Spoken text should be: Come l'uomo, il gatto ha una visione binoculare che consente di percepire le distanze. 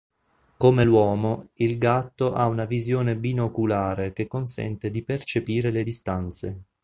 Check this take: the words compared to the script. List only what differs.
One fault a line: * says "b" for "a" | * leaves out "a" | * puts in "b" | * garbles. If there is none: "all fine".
all fine